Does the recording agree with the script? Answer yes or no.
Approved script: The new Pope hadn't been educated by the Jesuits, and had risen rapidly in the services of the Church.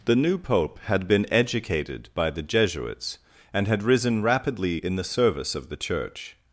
no